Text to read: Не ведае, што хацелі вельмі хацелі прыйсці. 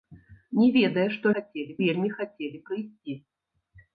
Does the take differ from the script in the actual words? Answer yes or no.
no